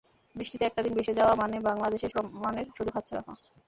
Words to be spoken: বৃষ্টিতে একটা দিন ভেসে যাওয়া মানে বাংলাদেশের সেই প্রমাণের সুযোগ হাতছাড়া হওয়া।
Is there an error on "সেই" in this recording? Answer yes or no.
yes